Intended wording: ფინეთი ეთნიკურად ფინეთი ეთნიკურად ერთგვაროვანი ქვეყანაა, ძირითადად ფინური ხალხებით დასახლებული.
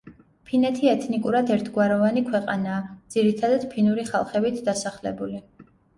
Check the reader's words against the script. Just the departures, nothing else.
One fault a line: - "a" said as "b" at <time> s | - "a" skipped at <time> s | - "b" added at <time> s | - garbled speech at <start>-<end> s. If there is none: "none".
- "ფინეთი ეთნიკურად" skipped at 1.5 s